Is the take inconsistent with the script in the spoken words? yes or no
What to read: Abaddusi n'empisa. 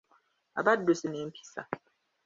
no